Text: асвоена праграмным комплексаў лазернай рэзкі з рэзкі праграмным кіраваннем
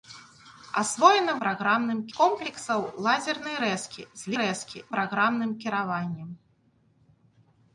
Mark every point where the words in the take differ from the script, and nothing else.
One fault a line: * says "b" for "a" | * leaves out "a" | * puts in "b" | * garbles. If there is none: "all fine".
all fine